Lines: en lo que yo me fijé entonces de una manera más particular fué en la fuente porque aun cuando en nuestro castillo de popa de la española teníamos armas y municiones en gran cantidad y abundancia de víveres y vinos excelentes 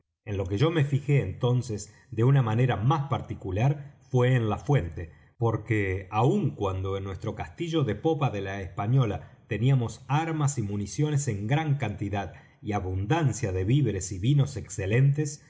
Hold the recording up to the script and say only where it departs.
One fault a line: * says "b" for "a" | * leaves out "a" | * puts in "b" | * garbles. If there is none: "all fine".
all fine